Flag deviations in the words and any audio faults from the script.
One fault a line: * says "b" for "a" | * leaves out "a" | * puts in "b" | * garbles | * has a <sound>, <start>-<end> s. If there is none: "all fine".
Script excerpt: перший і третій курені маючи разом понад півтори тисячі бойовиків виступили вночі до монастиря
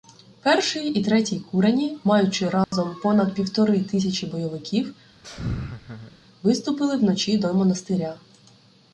* has a dropout, 2.6-2.7 s
* has a laugh, 5.2-6.2 s